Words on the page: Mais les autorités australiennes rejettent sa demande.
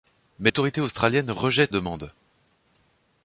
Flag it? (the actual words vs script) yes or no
yes